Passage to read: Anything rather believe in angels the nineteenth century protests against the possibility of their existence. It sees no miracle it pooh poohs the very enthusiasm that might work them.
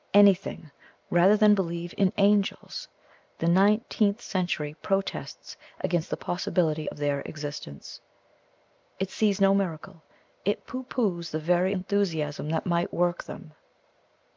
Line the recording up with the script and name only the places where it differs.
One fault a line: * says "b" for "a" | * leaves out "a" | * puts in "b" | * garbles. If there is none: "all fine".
* puts in "than"